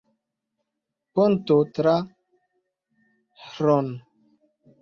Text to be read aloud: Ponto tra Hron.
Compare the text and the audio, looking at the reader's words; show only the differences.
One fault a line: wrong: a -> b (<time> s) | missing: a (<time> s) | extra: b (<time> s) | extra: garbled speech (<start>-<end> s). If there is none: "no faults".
no faults